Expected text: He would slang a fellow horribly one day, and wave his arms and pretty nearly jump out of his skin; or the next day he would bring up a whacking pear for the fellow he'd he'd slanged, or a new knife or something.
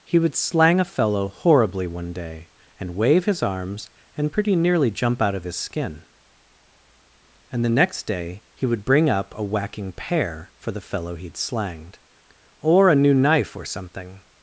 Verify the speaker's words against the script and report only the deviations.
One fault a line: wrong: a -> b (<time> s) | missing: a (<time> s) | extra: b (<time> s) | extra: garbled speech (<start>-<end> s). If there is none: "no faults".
wrong: or -> and (7.5 s)
missing: he'd (11.4 s)